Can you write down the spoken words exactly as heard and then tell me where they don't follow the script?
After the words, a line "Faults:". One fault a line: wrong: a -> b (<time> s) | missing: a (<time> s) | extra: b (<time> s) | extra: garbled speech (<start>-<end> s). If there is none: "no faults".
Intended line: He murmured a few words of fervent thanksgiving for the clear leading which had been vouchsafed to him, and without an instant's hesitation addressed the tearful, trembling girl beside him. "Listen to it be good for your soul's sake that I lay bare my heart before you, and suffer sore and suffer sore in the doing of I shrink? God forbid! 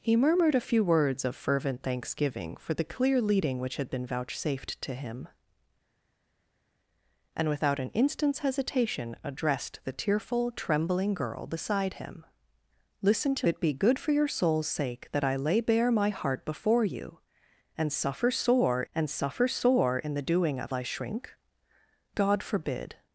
He murmured a few words of fervent thanksgiving for the clear leading which had been vouchsafed to him, and without an instant's hesitation addressed the tearful, trembling girl beside him. "Listen to it be good for your soul's sake that I lay bare my heart before you, and suffer sore and suffer sore in the doing of I shrink? God forbid!
Faults:
no faults